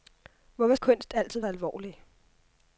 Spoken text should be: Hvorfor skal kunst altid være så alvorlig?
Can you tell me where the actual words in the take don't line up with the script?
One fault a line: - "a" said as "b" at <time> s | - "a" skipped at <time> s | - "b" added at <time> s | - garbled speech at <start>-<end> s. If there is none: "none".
- "skal" skipped at 0.8 s
- "være" skipped at 1.4 s